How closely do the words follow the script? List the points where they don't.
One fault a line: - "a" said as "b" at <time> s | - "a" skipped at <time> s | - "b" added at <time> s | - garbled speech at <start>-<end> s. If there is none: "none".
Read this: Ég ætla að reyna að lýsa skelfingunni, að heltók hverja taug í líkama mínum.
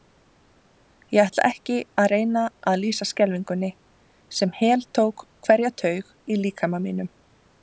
- "ekki" added at 1.5 s
- "að" said as "sem" at 4.4 s